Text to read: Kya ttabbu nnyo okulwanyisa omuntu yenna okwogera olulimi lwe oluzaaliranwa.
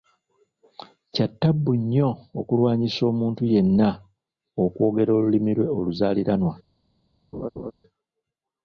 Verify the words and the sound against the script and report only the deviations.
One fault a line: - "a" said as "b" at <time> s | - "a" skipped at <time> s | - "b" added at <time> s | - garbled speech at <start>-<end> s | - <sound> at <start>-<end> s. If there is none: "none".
- laugh at 7.3-7.7 s